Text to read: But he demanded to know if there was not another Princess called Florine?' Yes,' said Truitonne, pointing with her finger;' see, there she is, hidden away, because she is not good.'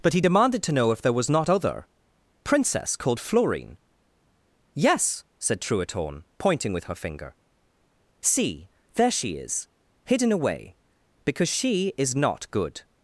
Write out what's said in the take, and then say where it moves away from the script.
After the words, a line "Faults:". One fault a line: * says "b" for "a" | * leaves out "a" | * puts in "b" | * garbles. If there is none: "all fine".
But he demanded to know if there was not other Princess called Florine?' Yes,' said Truitonne, pointing with her finger;' see, there she is, hidden away, because she is not good.'
Faults:
* says "other" for "another"